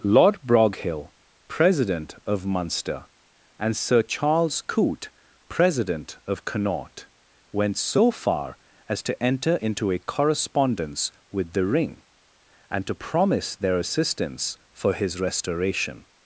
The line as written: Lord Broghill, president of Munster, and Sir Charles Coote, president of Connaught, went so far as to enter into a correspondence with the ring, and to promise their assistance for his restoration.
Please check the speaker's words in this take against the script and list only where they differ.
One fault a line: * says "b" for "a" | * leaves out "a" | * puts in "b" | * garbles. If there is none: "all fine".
all fine